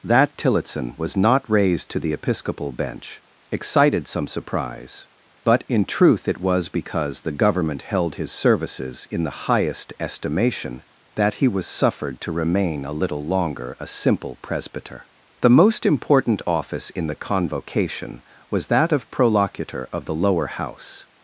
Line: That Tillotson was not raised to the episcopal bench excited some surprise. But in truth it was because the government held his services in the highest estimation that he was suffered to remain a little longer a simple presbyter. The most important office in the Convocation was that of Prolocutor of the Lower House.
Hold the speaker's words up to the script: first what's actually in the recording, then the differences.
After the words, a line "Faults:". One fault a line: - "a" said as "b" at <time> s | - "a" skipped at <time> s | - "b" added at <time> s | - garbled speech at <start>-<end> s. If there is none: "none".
That Tillotson was not raised to the episcopal bench excited some surprise. But in truth it was because the government held his services in the highest estimation that he was suffered to remain a little longer a simple presbyter. The most important office in the Convocation was that of Prolocutor of the Lower House.
Faults:
none